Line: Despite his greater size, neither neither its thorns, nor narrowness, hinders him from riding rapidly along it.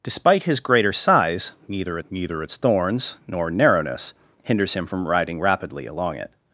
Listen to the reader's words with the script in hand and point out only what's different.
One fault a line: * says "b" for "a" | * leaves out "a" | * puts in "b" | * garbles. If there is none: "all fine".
all fine